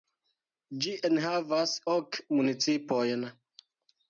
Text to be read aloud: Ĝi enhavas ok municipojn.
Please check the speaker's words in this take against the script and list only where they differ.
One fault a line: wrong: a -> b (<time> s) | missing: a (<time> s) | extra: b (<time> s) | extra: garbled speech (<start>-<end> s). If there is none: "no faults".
no faults